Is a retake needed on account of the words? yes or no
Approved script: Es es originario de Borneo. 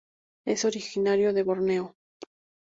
yes